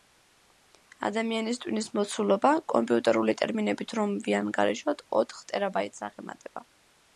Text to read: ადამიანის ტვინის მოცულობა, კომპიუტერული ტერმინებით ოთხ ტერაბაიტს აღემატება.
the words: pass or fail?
fail